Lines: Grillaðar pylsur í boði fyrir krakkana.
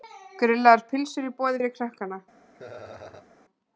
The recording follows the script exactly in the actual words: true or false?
true